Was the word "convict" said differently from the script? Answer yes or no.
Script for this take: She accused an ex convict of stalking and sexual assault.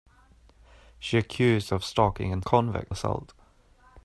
yes